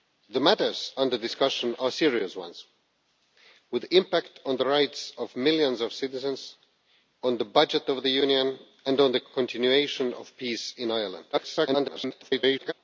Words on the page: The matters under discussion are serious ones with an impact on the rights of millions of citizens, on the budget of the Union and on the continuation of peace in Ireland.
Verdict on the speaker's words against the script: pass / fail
fail